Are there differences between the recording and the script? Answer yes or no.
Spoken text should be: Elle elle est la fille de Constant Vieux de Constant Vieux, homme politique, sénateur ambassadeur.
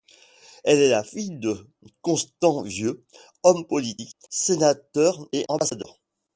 yes